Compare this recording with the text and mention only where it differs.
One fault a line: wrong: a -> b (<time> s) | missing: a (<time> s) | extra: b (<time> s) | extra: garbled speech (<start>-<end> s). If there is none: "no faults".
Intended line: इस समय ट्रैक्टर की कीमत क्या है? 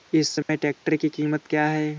no faults